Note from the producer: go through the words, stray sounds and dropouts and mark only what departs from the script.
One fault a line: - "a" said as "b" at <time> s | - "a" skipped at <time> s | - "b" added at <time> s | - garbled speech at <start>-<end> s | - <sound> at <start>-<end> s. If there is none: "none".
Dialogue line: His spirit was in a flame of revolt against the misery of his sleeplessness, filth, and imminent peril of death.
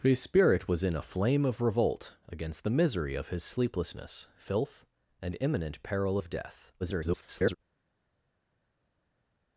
- garbled speech at 6.8-7.6 s